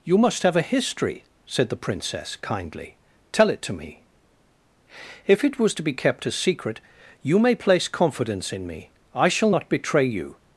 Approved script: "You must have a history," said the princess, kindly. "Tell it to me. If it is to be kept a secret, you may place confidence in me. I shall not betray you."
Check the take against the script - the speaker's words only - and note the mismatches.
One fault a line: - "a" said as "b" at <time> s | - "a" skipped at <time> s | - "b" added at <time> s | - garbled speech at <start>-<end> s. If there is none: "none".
- "is" said as "was" at 5.6 s